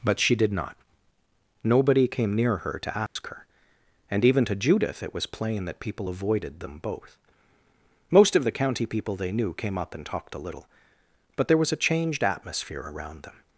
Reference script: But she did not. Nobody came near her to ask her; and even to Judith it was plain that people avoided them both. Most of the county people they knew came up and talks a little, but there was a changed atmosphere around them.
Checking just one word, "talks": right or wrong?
wrong